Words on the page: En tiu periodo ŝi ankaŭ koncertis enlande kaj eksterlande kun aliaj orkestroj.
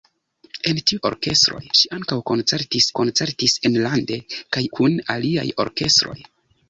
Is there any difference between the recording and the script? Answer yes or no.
yes